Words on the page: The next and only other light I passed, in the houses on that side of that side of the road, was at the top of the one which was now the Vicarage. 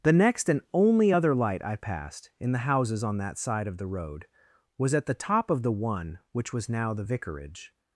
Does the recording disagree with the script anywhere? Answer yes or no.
yes